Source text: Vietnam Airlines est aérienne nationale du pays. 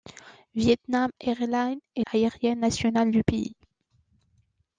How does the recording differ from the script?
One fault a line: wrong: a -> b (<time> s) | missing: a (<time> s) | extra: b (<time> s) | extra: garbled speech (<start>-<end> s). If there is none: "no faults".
no faults